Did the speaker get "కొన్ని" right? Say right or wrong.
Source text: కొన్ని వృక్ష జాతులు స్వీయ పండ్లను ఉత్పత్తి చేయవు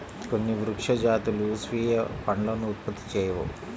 right